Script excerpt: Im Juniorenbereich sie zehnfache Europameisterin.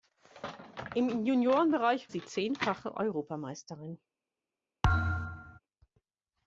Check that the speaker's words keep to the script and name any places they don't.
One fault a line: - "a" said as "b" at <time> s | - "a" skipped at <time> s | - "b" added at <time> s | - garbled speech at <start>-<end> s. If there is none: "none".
none